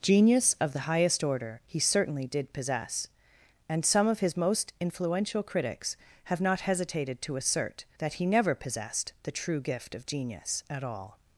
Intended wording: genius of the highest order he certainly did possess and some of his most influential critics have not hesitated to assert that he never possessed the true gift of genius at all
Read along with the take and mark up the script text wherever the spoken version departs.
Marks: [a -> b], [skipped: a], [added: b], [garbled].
genius of the highest order he certainly did possess and some of his most influential critics have not hesitated to assert that he never possessed the true gift of genius at all